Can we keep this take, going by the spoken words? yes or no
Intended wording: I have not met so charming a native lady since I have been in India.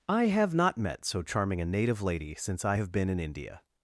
yes